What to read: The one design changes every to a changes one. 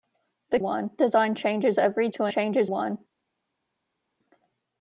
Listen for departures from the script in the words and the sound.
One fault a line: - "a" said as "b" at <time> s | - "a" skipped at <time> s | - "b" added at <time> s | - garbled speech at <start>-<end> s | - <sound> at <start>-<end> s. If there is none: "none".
none